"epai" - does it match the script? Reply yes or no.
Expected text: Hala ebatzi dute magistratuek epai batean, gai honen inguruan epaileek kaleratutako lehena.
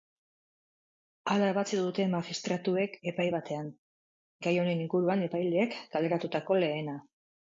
yes